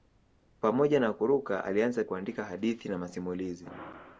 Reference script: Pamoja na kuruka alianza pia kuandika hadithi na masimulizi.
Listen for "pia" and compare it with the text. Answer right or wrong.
wrong